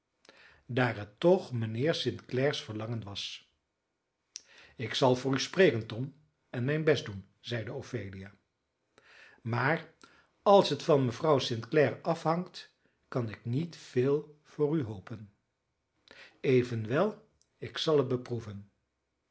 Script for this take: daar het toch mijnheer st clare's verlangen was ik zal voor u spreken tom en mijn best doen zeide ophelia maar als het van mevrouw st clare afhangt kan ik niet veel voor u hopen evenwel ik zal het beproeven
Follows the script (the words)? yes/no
yes